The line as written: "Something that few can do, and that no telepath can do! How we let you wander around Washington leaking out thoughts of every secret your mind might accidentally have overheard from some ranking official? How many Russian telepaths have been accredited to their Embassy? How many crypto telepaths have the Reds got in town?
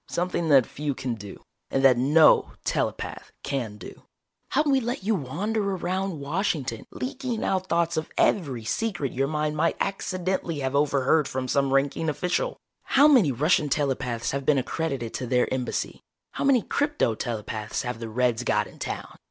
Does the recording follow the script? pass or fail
pass